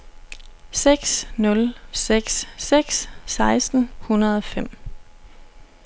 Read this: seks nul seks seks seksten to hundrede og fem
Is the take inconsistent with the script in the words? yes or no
yes